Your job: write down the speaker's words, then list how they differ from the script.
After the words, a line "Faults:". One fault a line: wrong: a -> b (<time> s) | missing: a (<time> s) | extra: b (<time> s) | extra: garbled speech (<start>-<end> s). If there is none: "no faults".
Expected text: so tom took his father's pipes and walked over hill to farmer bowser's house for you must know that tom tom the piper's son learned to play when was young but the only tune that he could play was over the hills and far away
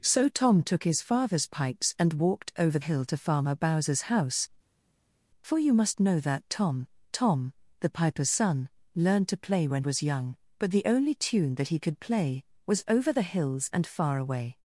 so tom took his father's pipes and walked over hill to farmer bowser's house for you must know that tom tom the piper's son learned to play when was young but the only tune that he could play was over the hills and far away
Faults:
no faults